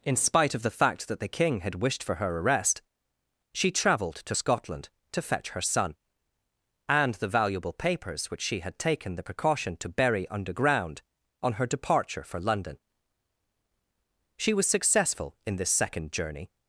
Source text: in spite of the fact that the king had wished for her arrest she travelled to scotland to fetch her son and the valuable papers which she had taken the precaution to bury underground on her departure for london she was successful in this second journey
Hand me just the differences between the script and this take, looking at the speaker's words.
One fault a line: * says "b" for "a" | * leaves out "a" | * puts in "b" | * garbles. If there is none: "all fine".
all fine